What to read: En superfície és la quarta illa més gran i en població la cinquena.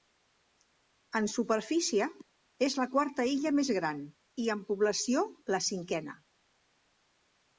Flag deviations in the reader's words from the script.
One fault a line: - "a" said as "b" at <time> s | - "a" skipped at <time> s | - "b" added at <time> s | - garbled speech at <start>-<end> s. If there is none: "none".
none